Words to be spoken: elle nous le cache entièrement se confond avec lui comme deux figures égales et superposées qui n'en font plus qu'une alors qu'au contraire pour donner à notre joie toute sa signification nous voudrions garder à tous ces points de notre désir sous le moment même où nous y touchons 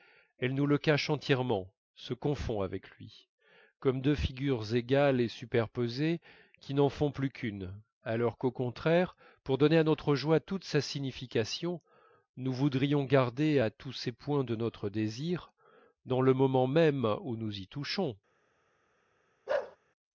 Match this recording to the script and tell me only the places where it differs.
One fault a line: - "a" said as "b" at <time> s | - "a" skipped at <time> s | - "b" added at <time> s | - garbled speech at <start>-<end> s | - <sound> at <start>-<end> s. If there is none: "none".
- "sous" said as "dans" at 16.0 s
- bark at 19.5-19.8 s